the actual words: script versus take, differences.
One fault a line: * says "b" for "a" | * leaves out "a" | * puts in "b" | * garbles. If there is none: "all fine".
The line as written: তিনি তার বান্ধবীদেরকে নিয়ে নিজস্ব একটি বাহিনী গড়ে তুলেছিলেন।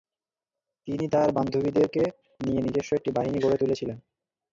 all fine